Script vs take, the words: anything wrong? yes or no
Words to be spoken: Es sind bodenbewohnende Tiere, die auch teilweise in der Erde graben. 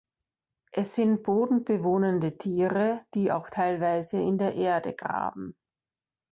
no